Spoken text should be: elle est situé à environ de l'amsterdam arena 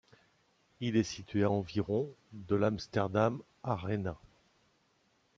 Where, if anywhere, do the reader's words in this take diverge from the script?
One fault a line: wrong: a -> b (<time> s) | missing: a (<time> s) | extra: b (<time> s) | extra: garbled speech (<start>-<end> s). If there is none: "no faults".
wrong: elle -> il (0.8 s)